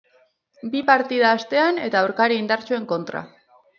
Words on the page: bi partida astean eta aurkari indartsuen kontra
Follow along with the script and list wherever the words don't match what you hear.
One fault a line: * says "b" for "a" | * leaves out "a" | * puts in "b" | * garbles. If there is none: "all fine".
all fine